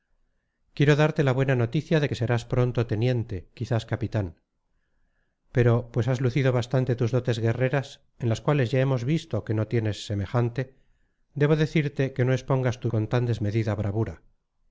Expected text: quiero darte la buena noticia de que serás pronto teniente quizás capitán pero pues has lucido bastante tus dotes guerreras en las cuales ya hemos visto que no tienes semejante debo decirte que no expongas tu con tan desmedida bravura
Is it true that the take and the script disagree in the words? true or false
false